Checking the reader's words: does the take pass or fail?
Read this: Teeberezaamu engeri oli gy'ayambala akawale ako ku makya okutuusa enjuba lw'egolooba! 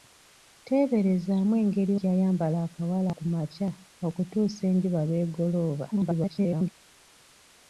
fail